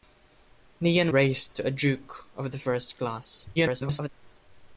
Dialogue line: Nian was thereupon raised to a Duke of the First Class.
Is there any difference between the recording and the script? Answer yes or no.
yes